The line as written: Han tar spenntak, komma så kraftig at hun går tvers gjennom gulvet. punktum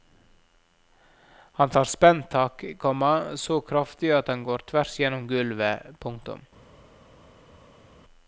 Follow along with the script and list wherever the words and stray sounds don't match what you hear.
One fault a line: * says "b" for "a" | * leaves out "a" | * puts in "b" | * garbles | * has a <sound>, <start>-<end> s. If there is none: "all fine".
* says "han" for "hun"